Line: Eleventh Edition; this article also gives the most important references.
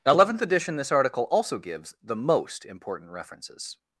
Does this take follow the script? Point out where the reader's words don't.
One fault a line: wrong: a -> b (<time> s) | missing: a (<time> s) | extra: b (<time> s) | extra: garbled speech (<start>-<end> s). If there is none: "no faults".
no faults